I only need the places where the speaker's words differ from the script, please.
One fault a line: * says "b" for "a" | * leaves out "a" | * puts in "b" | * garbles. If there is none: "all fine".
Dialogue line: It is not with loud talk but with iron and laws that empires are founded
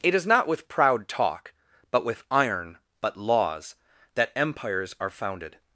* says "proud" for "loud"
* says "but" for "and"